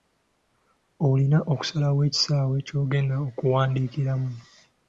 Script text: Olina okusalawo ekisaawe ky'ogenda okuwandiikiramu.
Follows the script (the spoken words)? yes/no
yes